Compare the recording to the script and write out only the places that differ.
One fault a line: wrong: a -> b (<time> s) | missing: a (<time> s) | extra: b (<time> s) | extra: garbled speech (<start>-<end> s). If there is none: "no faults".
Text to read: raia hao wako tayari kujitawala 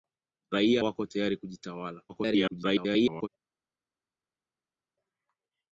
missing: hao (0.8 s)
extra: garbled speech (2.1-3.3 s)